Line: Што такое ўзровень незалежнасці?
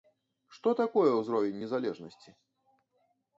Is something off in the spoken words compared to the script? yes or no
no